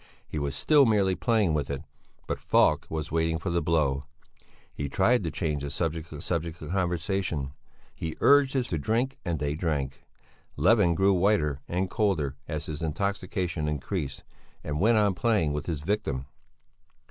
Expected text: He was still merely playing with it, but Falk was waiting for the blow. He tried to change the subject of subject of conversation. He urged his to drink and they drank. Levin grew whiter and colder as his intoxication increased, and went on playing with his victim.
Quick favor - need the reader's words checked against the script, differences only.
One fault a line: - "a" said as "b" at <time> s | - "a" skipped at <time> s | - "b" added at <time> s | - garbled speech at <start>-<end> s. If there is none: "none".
none